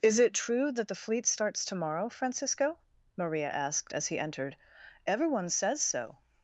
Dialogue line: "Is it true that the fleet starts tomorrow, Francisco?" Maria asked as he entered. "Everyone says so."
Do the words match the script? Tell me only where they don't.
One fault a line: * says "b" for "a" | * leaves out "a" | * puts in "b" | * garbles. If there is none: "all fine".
all fine